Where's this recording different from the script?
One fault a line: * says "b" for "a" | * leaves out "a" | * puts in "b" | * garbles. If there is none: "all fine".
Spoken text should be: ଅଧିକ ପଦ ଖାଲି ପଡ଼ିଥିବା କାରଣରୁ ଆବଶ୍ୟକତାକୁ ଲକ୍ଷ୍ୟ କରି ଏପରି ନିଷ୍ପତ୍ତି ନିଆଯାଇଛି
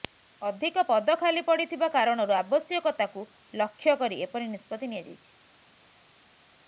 all fine